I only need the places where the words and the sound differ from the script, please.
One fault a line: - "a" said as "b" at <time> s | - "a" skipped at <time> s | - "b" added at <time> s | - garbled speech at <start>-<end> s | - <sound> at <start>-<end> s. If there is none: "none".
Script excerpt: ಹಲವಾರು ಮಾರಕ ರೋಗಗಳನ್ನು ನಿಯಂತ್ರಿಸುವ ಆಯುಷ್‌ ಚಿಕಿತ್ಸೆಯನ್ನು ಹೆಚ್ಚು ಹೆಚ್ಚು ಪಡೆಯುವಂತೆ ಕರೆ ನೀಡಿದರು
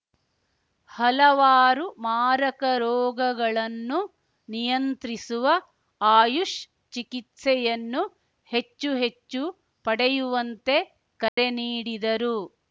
- dropout at 11.3-11.4 s